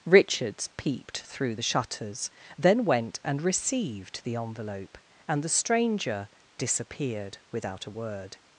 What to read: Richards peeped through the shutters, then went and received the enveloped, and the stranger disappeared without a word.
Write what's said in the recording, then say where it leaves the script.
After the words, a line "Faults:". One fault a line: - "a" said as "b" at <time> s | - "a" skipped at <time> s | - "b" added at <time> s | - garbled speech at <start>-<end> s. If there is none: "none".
Richards peeped through the shutters, then went and received the envelope, and the stranger disappeared without a word.
Faults:
- "enveloped" said as "envelope" at 4.4 s